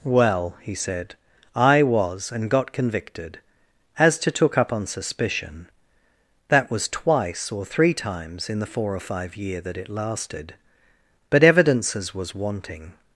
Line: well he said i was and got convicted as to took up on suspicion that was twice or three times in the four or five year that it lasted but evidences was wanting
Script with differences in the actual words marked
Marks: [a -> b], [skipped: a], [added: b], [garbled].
well he said i was and got convicted as to took up on suspicion that was twice or three times in the four or five year that it lasted but evidences was wanting